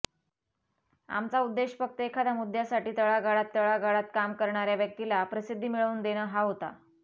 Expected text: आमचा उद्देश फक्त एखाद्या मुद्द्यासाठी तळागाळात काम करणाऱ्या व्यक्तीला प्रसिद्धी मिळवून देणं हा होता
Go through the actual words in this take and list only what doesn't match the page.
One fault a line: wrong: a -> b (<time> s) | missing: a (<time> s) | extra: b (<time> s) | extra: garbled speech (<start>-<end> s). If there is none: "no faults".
extra: तळागाळात (3.5 s)